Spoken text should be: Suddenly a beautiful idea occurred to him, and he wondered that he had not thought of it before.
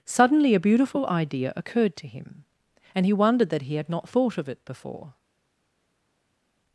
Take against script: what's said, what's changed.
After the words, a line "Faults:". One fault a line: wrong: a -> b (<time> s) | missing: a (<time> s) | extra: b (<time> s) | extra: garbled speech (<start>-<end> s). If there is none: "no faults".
Suddenly a beautiful idea occurred to him, and he wondered that he had not thought of it before.
Faults:
no faults